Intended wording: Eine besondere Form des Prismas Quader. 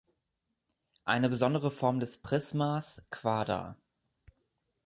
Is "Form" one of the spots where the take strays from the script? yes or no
no